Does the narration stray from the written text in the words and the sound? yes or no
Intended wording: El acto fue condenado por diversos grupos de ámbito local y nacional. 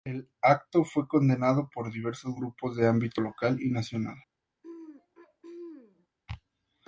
yes